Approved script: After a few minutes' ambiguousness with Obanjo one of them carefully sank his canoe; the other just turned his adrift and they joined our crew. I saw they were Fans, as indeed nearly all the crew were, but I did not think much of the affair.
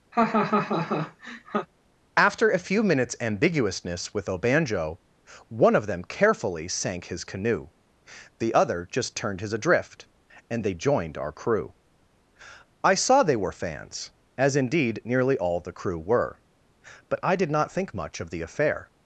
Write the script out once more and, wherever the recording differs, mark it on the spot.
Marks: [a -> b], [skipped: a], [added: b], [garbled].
After a few minutes' ambiguousness with Obanjo one of them carefully sank his canoe; the other just turned his adrift and they joined our crew. I saw they were Fans, as indeed nearly all the crew were, but I did not think much of the affair.